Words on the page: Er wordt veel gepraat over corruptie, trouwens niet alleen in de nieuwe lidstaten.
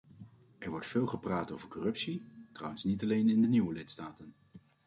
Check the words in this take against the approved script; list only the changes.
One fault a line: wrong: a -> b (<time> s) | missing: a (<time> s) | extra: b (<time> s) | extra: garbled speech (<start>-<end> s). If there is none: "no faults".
no faults